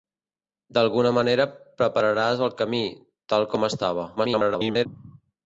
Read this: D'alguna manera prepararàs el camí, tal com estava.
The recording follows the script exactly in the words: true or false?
false